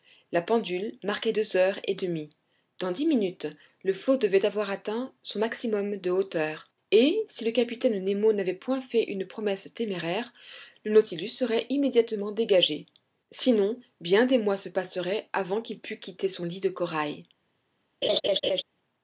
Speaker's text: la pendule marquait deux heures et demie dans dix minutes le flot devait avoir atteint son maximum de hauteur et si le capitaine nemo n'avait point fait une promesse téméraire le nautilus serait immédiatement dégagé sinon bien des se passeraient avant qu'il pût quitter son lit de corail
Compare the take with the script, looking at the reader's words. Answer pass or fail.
fail